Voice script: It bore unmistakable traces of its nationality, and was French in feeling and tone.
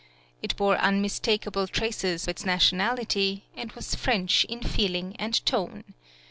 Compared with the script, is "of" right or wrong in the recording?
wrong